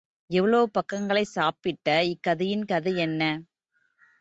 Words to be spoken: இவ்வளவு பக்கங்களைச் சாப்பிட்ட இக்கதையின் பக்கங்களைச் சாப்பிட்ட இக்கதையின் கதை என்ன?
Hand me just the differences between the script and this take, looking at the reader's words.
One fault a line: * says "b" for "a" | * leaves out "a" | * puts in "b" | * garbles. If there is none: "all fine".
* leaves out "பக்கங்களைச் சாப்பிட்ட இக்கதையின்"